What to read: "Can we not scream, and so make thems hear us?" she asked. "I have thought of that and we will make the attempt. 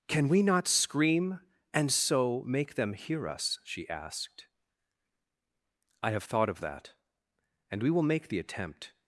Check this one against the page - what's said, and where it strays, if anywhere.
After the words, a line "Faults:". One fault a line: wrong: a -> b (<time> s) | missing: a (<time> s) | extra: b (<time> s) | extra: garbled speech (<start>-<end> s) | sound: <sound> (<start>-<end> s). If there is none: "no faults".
"Can we not scream, and so make them hear us?" she asked. "I have thought of that and we will make the attempt.
Faults:
wrong: thems -> them (2.8 s)